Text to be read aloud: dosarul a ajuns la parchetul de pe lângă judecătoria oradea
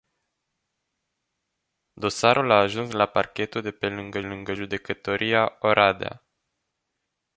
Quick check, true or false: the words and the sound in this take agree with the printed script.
false